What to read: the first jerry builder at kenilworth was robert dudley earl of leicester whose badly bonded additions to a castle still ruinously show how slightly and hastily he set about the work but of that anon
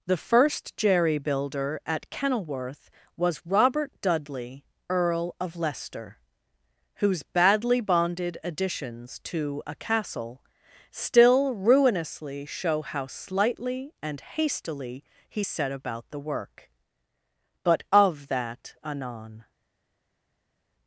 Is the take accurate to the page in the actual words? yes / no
yes